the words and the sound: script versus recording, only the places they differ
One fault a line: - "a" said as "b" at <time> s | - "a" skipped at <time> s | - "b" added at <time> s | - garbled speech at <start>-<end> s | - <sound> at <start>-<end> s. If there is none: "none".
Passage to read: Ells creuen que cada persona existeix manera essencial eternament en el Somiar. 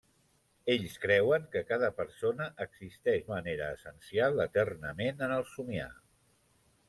none